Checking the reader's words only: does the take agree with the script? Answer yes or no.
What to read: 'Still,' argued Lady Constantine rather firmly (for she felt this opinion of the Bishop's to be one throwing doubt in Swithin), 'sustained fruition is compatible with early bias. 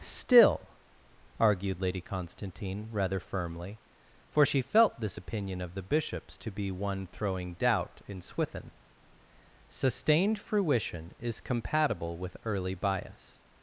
yes